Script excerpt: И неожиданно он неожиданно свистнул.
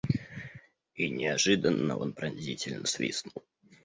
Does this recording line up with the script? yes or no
no